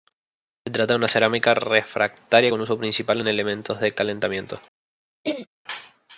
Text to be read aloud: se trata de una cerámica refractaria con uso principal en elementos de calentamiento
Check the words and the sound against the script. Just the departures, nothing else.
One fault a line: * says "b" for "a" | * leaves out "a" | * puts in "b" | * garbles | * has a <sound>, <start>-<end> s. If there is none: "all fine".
* has a throat clearing, 5.2-5.5 s